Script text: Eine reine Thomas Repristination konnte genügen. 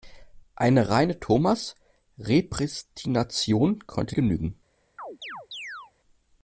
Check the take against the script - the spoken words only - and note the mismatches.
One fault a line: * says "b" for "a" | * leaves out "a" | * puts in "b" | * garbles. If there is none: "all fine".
all fine